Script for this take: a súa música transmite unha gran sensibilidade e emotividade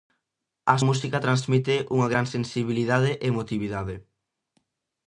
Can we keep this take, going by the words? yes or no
no